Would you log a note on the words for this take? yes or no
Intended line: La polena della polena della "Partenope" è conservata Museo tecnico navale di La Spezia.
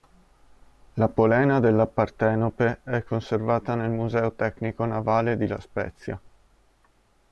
yes